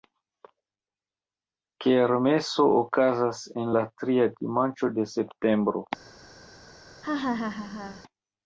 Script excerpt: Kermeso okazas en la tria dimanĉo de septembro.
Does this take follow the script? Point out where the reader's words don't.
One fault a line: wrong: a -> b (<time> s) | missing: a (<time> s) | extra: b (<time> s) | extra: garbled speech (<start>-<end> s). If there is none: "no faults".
no faults